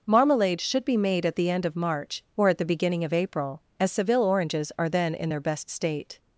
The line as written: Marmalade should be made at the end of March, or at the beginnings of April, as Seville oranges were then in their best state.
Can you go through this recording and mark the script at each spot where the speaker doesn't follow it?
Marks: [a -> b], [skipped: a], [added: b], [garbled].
Marmalade should be made at the end of March, or at the [beginnings -> beginning] of April, as Seville oranges [were -> are] then in their best state.